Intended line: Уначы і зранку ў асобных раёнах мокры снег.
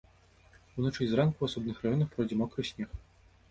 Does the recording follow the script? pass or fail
fail